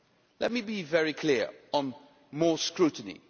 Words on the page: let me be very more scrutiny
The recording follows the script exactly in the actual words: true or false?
false